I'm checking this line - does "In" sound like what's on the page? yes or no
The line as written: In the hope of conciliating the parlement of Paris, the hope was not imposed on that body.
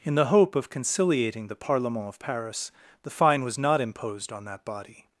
yes